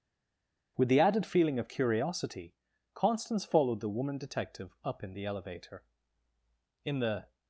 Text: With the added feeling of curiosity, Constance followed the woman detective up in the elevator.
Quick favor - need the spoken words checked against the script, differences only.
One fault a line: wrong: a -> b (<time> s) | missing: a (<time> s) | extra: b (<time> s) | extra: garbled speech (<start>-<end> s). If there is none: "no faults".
extra: In the (6.8 s)